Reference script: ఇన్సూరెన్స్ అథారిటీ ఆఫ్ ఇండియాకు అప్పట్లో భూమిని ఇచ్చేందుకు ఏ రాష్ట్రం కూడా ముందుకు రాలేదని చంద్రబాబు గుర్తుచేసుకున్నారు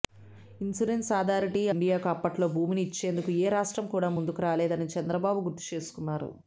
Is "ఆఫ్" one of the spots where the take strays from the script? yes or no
yes